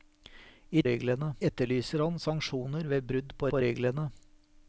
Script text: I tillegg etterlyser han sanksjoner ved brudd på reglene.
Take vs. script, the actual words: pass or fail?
fail